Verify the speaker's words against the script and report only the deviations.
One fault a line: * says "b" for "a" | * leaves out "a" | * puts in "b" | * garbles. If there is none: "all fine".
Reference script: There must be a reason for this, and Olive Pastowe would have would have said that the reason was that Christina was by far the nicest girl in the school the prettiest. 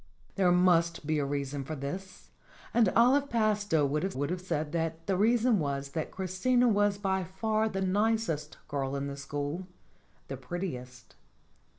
all fine